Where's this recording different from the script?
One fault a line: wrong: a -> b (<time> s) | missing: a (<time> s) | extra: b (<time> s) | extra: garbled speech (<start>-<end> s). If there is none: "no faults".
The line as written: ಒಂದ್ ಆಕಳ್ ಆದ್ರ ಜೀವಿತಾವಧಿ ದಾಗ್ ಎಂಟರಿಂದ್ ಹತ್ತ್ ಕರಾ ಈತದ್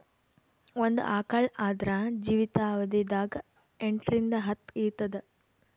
missing: ಕರಾ (4.7 s)